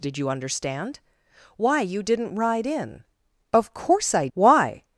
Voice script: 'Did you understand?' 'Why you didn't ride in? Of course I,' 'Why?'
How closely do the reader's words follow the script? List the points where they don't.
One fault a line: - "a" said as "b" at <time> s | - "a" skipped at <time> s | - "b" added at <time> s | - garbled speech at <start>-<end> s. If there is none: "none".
none